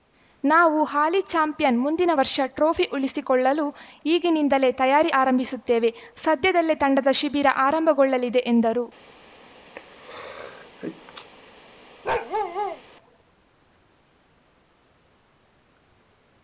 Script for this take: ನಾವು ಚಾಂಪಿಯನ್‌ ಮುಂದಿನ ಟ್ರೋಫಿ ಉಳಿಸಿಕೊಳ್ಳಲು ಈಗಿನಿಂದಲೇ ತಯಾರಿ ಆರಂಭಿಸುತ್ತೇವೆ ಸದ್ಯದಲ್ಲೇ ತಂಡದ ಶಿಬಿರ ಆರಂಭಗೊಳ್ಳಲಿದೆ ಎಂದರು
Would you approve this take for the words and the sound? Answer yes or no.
no